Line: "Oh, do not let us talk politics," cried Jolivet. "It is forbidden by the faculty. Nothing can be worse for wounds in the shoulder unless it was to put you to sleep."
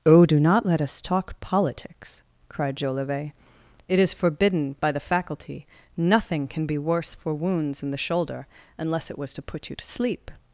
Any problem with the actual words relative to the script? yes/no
no